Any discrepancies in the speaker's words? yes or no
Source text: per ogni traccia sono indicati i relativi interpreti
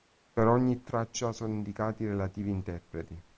no